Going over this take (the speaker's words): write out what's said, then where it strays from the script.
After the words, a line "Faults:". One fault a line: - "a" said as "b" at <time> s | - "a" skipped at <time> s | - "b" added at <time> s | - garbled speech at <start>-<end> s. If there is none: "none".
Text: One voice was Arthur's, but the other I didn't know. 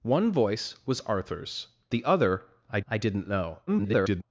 One voice was Arthur's, the other I I didn't know. [garbled]
Faults:
- "but" skipped at 1.7 s
- "I" added at 2.9 s
- garbled speech at 3.7-4.2 s